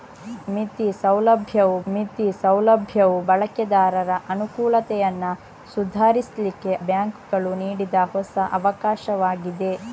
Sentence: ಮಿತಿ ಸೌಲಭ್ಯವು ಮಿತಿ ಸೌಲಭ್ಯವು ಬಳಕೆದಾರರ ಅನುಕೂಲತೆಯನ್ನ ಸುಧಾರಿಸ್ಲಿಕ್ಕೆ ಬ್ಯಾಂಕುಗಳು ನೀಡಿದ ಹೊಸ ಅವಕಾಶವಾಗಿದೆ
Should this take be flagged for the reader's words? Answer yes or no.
no